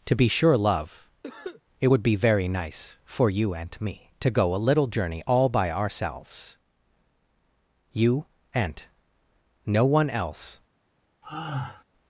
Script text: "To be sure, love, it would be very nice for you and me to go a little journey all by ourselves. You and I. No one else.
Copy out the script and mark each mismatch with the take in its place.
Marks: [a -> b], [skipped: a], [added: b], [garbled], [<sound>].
"To be sure, love, [cough] it would be very nice for you and me to go a little journey all by ourselves. You and [skipped: I.] No one else. [sigh]